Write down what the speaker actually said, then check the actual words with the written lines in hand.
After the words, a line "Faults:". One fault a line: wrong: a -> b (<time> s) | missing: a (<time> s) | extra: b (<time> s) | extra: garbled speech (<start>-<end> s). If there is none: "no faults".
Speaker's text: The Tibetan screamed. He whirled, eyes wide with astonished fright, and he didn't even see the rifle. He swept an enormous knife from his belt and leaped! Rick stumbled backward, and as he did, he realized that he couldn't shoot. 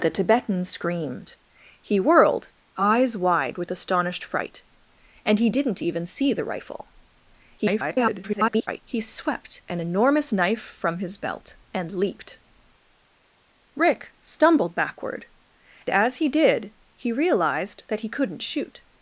The Tibetan screamed. He whirled, eyes wide with astonished fright, and he didn't even see the rifle. [garbled] He swept an enormous knife from his belt and leaped! Rick stumbled backward, as he did, he realized that he couldn't shoot.
Faults:
extra: garbled speech (7.6-8.8 s)
missing: and (15.3 s)